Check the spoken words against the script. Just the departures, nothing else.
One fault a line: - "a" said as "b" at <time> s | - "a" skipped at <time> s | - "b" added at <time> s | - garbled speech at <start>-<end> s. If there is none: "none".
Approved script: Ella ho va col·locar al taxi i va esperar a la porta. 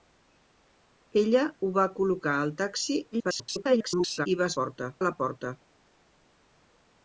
- garbled speech at 3.1-4.3 s
- "esperar" said as "porta" at 4.6 s